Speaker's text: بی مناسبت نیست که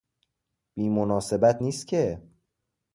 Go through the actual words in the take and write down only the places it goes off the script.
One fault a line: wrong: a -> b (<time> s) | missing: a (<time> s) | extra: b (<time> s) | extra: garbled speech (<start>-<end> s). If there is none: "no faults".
no faults